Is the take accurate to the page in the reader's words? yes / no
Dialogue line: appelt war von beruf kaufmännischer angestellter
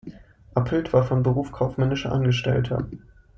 yes